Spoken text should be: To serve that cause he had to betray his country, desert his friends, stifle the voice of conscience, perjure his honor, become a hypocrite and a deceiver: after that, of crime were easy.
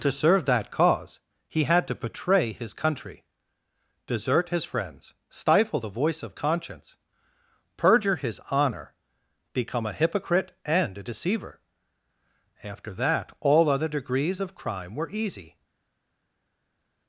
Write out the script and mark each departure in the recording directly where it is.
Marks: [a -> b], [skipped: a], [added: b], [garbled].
To serve that cause he had to betray his country, desert his friends, stifle the voice of conscience, perjure his honor, become a hypocrite and a deceiver: after that, [added: all other degrees] of crime were easy.